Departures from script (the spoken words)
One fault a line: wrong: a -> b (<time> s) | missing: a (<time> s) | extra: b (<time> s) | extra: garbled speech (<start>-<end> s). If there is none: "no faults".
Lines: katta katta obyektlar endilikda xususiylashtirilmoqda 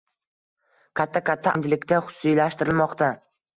missing: obyektlar (1.5 s)